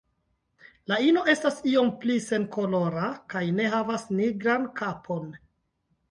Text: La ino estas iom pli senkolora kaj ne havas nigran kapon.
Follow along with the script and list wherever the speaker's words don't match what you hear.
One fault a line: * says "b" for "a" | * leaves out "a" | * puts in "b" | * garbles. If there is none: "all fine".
all fine